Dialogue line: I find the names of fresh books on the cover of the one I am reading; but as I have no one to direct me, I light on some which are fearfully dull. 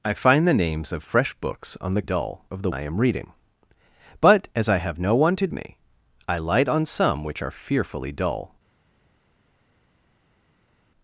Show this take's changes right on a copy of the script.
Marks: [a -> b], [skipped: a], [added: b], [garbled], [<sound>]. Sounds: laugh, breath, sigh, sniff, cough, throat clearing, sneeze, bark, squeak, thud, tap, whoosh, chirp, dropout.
I find the names of fresh books on the [cover -> dull] of the [skipped: one] I am reading; but as I have no one to [skipped: direct] me, I light on some which are fearfully dull.